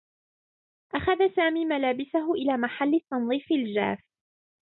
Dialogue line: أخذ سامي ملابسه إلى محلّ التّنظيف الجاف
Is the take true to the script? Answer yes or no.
yes